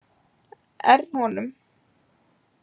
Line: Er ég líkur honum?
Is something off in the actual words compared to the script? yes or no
yes